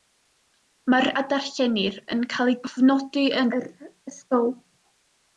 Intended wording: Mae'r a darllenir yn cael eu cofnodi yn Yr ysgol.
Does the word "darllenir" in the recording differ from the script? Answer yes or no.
no